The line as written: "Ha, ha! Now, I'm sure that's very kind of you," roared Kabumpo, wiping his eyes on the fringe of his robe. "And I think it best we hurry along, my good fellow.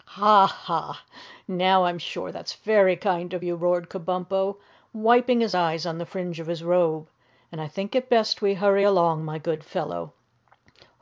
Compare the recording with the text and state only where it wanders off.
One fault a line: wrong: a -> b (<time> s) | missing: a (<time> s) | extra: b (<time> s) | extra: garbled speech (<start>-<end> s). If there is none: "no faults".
no faults